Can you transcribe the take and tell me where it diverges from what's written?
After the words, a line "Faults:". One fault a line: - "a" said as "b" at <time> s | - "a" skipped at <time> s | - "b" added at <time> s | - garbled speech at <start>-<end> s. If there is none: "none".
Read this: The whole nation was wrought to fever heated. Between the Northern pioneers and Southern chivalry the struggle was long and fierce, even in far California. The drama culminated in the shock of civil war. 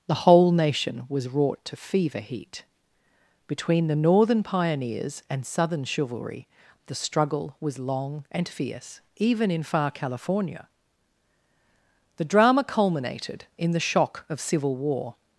The whole nation was wrought to fever heat. Between the Northern pioneers and Southern chivalry the struggle was long and fierce, even in far California. The drama culminated in the shock of civil war.
Faults:
- "heated" said as "heat" at 2.2 s